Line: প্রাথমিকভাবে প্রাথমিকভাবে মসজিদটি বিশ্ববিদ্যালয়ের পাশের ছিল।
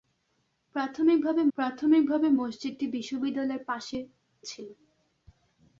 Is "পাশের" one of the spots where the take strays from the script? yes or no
no